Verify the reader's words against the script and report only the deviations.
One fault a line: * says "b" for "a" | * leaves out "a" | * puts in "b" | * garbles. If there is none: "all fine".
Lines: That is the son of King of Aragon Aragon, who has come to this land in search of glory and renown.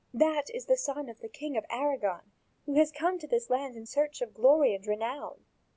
* puts in "the"
* leaves out "Aragon"